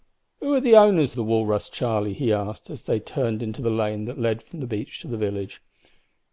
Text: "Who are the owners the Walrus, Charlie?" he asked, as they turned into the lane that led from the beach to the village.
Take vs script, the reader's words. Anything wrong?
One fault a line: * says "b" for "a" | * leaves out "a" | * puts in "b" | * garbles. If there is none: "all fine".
all fine